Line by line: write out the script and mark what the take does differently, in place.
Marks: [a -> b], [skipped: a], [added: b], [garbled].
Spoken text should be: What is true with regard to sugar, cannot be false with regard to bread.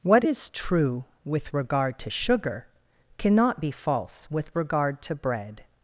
What is true with regard to sugar, cannot be false with regard to bread.